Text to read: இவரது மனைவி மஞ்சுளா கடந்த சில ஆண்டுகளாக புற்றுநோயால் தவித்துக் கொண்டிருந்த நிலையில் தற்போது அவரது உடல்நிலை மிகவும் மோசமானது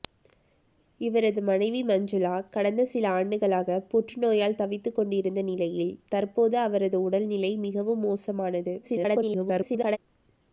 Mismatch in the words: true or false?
true